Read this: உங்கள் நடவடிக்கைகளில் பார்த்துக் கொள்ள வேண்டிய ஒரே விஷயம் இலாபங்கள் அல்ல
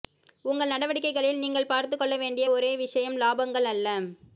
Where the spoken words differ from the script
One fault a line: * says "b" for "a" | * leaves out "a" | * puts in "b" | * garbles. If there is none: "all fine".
* puts in "நீங்கள்"